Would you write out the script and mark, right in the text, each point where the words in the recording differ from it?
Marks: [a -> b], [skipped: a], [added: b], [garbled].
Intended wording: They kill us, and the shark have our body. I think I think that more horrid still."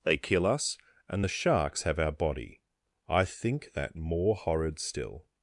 They kill us, and the [shark -> sharks] have our body. I think [skipped: I think] that more horrid still."